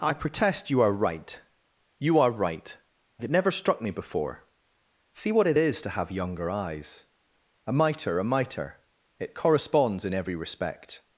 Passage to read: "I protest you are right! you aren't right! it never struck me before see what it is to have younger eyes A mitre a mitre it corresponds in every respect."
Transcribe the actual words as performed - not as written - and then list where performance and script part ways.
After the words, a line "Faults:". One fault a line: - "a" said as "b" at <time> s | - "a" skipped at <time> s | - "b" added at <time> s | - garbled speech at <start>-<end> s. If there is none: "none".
"I protest you are right! you are right! it never struck me before see what it is to have younger eyes A mitre a mitre it corresponds in every respect."
Faults:
- "aren't" said as "are" at 2.2 s